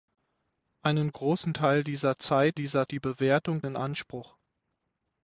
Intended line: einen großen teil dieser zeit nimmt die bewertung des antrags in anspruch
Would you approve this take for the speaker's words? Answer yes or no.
no